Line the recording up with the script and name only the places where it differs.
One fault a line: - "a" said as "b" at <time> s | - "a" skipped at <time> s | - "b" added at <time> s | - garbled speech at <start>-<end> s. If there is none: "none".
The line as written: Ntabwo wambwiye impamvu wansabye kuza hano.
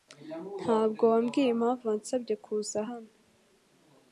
none